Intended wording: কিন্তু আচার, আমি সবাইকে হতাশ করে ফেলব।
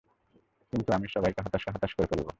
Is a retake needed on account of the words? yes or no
yes